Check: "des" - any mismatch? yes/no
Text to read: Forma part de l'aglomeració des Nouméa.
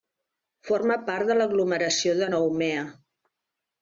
yes